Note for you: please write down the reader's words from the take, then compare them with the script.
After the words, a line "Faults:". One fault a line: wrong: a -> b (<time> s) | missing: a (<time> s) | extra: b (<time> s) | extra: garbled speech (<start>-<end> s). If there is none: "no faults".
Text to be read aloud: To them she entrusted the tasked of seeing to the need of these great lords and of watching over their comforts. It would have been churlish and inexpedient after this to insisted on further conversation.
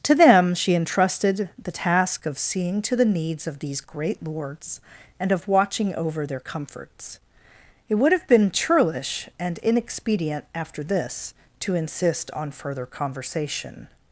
To them she entrusted the task of seeing to the needs of these great lords and of watching over their comforts. It would have been churlish and inexpedient after this to insist on further conversation.
Faults:
wrong: tasked -> task (1.7 s)
wrong: need -> needs (3.1 s)
wrong: insisted -> insist (11.7 s)